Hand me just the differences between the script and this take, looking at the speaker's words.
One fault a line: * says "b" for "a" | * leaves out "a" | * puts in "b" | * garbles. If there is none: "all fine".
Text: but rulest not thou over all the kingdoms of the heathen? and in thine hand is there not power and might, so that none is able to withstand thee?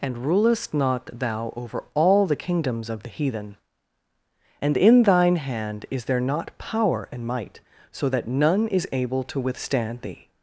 * says "and" for "but"